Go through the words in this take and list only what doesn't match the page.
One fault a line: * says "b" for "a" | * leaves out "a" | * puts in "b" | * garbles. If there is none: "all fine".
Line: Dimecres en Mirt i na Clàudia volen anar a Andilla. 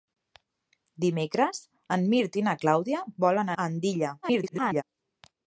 * leaves out "anar"
* garbles